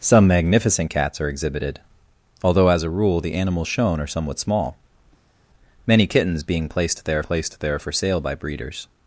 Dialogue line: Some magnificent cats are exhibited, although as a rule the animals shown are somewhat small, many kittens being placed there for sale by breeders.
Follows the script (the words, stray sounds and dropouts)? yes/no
no